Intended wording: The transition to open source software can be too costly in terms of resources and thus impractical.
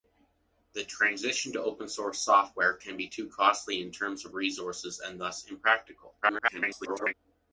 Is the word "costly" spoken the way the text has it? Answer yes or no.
yes